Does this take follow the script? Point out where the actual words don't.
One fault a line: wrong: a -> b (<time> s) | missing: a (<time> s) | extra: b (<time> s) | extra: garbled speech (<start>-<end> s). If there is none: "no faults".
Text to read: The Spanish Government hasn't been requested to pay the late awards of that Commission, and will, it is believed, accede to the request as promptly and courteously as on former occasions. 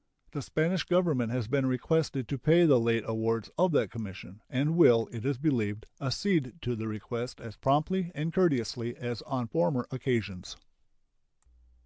wrong: hasn't -> has (1.3 s)